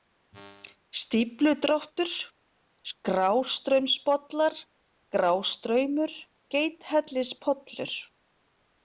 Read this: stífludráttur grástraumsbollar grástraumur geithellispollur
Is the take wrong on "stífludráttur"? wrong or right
right